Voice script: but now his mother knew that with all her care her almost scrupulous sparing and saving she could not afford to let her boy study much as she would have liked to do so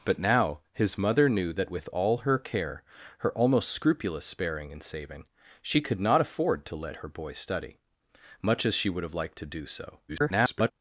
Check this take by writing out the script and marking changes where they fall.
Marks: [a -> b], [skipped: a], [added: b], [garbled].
but now his mother knew that with all her care her almost scrupulous sparing and saving she could not afford to let her boy study much as she would have liked to do so [garbled]